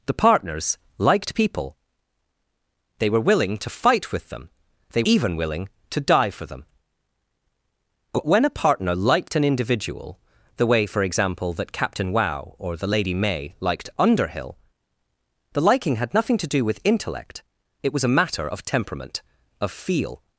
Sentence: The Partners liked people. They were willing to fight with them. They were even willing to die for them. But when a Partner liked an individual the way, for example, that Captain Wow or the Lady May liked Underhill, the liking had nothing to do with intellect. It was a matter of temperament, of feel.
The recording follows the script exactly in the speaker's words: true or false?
false